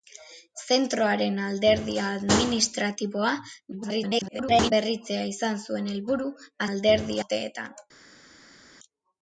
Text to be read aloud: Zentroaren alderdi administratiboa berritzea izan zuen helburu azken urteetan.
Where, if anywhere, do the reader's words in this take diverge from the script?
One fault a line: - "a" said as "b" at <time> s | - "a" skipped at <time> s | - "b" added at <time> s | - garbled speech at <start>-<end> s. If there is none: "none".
- garbled speech at 3.7-4.7 s
- "azken" said as "alderdi" at 6.7 s